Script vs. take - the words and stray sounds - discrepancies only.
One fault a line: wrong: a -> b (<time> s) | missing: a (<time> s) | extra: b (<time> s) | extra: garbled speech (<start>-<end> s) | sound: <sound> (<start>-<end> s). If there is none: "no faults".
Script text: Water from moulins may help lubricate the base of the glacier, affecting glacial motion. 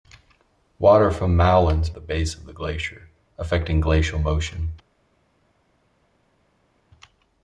missing: may help lubricate (1.9 s)